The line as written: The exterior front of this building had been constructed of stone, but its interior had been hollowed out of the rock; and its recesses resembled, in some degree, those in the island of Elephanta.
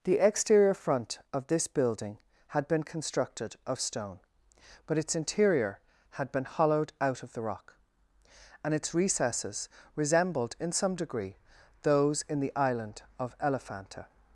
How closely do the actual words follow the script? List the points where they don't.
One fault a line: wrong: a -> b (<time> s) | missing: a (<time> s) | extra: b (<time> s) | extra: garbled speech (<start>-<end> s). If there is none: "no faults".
no faults